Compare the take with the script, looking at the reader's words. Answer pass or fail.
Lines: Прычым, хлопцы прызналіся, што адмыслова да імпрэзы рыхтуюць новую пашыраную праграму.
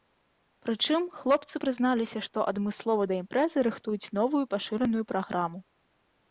pass